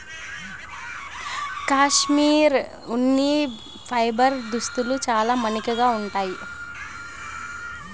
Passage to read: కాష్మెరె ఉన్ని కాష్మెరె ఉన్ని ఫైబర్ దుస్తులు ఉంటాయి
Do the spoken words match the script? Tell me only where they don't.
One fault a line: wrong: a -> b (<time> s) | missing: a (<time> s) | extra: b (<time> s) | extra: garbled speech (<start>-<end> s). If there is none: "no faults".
wrong: కాష్మెరె ఉన్ని ఫైబర్ దుస్తులు -> ఫైబర్ దుస్తులు చాలా మన్నికగా (3.9 s)